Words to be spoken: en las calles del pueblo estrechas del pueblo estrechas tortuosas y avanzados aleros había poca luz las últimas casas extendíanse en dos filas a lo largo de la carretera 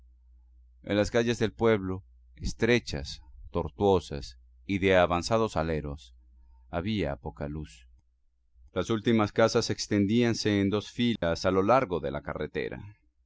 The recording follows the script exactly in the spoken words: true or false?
false